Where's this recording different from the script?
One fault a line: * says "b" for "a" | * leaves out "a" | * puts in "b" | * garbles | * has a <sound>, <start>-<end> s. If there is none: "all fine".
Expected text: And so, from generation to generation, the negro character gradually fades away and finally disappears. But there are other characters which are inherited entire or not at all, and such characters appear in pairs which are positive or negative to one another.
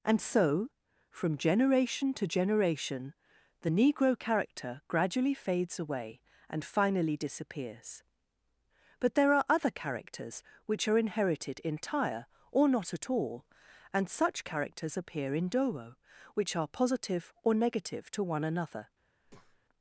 * says "dowo" for "pairs"
* has a breath, 19.2-19.6 s